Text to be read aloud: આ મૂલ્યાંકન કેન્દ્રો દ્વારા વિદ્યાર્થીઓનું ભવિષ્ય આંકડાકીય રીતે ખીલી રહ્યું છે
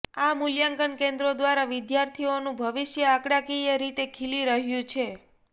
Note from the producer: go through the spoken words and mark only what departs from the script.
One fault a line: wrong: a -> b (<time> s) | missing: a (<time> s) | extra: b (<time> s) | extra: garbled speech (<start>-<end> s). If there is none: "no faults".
no faults